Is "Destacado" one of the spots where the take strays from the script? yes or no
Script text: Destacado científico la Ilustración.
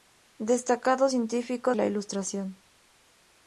no